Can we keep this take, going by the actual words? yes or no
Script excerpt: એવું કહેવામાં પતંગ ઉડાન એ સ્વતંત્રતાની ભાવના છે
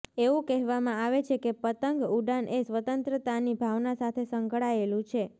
no